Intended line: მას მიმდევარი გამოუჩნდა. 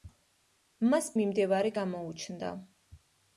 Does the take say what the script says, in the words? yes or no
yes